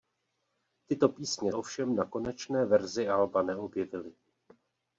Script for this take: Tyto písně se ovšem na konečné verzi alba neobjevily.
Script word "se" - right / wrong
wrong